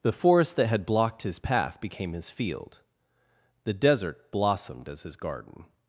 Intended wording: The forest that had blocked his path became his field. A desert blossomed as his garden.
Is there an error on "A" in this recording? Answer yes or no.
yes